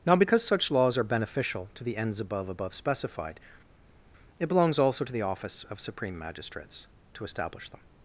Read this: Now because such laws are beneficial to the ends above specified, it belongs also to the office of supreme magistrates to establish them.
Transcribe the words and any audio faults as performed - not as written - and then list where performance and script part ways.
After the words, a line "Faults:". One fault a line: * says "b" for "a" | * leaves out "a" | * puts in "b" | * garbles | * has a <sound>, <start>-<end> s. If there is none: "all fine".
Now because such laws are beneficial to the ends above above specified, it belongs also to the office of supreme magistrates to establish them.
Faults:
* puts in "above"